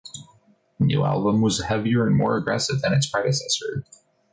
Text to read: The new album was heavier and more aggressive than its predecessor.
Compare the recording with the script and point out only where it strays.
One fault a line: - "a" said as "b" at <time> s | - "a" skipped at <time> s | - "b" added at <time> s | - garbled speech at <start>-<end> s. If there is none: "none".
none